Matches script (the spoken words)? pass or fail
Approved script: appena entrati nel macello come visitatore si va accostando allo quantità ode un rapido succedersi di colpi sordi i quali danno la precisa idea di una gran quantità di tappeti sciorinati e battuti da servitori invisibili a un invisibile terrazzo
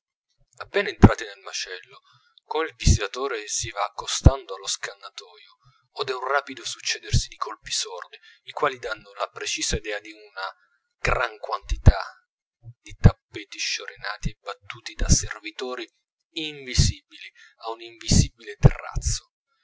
fail